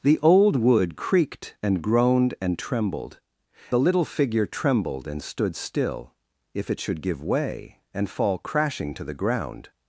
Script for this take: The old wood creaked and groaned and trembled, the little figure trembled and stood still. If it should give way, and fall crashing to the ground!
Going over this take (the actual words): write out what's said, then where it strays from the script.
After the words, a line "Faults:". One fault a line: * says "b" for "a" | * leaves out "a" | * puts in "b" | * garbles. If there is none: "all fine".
The old wood creaked and groaned and trembled, the little figure trembled and stood still. If it should give way, and fall crashing to the ground!
Faults:
all fine